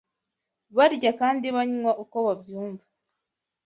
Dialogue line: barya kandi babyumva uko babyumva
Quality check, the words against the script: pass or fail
fail